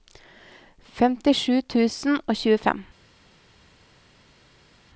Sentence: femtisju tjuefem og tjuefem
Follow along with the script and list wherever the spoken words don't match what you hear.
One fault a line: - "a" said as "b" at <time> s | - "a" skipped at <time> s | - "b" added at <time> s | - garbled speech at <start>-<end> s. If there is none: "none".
- "tjuefem" said as "tusen" at 1.6 s